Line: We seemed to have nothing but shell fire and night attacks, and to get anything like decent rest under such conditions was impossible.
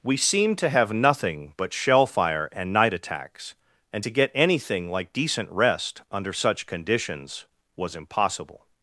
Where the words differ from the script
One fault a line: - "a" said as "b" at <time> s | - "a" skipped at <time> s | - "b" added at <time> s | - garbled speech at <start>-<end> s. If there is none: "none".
none